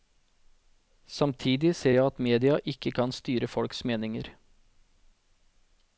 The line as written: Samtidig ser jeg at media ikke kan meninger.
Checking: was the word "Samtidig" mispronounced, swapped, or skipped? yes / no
no